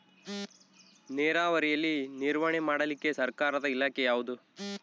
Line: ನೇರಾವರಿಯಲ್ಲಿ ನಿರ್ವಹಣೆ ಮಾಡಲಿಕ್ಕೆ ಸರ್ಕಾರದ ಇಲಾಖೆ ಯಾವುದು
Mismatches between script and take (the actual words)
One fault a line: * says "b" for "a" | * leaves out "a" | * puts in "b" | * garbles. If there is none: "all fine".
all fine